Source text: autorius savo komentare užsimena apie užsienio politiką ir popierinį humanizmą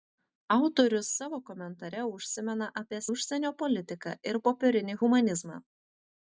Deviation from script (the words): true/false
false